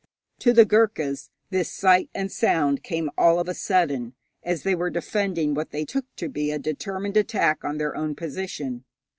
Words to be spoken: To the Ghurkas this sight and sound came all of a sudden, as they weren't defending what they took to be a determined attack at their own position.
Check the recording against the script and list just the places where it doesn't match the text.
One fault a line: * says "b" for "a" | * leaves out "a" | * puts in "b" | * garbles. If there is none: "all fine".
* says "were" for "weren't"
* says "on" for "at"